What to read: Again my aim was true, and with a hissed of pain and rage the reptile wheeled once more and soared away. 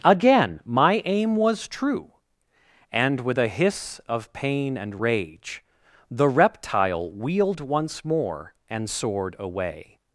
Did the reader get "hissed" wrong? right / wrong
wrong